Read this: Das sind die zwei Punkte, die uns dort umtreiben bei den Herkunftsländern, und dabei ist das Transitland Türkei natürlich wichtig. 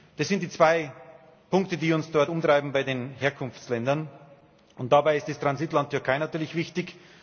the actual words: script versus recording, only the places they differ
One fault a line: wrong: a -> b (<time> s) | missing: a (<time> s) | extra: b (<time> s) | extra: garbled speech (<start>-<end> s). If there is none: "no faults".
no faults